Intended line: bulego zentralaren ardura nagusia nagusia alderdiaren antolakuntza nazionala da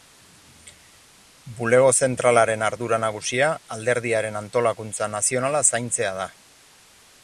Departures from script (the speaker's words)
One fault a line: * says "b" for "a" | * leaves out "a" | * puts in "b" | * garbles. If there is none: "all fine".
* leaves out "nagusia"
* puts in "zaintzea"